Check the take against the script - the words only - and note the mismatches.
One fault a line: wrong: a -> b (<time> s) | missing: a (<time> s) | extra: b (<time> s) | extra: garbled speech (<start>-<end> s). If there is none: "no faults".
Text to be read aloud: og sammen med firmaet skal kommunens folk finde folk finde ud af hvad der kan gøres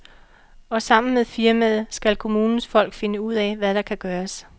missing: folk finde (3.2 s)